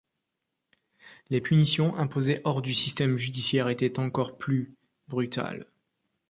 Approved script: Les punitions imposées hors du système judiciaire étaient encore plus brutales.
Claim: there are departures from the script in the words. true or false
false